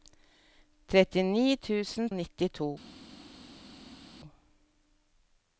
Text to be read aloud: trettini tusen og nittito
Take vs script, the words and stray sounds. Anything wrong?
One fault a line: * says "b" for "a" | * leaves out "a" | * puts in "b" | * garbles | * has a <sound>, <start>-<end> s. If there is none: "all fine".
all fine